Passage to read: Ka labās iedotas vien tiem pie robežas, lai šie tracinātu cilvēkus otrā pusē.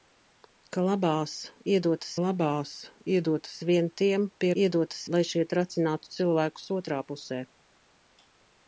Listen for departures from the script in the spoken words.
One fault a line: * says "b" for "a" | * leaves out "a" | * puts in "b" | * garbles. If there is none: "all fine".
* puts in "labās iedotas"
* says "iedotas" for "robežas"